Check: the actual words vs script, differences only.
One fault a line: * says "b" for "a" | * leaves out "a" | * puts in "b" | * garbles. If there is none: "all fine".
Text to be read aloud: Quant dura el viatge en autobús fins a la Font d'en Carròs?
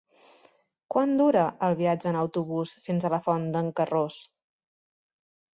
all fine